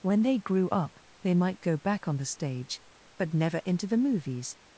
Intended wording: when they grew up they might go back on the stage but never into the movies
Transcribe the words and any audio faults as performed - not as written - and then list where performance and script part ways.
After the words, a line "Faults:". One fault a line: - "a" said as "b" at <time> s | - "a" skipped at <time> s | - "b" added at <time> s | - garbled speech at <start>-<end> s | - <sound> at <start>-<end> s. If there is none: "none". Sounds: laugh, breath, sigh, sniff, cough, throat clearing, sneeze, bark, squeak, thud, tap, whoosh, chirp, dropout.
when they grew up they might go back on the stage but never into the movies
Faults:
none